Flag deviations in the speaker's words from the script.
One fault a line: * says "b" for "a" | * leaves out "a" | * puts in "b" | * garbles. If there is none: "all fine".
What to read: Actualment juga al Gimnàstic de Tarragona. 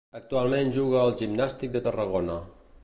all fine